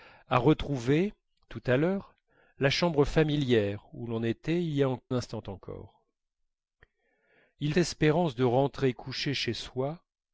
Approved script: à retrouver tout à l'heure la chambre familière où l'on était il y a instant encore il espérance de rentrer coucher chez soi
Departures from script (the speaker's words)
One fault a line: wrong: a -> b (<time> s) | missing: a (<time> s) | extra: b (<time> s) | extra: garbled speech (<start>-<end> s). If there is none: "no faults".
no faults